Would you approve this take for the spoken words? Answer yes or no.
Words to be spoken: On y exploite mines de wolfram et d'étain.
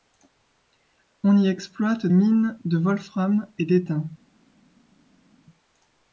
yes